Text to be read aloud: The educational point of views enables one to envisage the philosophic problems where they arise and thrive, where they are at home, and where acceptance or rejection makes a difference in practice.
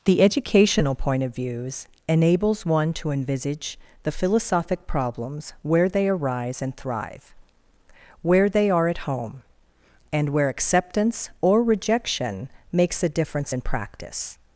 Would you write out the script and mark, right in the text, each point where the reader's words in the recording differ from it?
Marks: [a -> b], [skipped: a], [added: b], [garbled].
The educational point of views enables one to envisage the philosophic problems where they arise and thrive, where they are at home, and where acceptance or rejection makes a difference in practice.